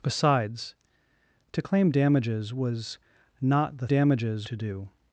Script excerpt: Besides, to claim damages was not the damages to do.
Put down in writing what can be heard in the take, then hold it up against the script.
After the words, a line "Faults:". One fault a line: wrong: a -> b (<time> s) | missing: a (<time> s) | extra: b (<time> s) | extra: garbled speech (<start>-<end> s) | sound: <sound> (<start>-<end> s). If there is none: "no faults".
Besides, to claim damages was not the damages to do.
Faults:
no faults